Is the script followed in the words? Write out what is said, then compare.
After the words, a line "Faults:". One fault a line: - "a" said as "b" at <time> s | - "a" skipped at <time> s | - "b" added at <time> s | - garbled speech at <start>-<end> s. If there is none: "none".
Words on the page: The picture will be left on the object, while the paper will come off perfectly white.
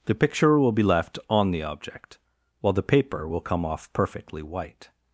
The picture will be left on the object, while the paper will come off perfectly white.
Faults:
none